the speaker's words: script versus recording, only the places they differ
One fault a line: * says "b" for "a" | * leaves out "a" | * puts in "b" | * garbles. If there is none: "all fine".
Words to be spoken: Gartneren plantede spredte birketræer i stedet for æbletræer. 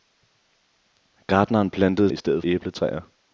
* leaves out "spredte birketræer"
* leaves out "for"